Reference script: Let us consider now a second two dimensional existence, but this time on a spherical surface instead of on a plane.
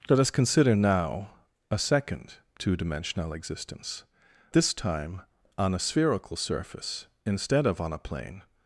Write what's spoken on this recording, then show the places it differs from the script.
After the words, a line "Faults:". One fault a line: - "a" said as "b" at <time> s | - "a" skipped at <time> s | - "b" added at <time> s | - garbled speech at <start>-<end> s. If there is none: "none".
Let us consider now a second two dimensional existence, this time on a spherical surface instead of on a plane.
Faults:
- "but" skipped at 4.0 s